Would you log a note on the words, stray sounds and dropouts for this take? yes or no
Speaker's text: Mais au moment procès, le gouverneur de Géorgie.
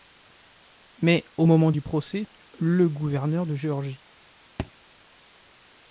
yes